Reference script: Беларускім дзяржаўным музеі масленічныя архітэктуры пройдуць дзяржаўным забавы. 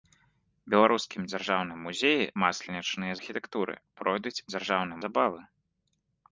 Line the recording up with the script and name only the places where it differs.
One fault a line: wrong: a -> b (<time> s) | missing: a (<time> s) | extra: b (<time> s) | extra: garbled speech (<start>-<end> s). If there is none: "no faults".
no faults